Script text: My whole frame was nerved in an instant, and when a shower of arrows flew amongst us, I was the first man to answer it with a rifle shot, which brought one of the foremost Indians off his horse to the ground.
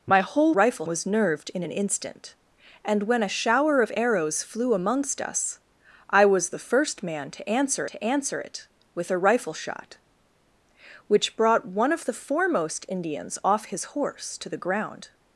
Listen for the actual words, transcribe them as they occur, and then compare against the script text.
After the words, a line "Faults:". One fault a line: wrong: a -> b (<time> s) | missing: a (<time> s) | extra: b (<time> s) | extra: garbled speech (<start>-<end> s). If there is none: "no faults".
My whole rifle was nerved in an instant, and when a shower of arrows flew amongst us, I was the first man to answer to answer it with a rifle shot, which brought one of the foremost Indians off his horse to the ground.
Faults:
wrong: frame -> rifle (0.5 s)
extra: to answer (7.9 s)